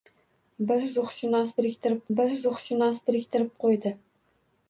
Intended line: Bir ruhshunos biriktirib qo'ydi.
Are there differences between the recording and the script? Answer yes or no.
yes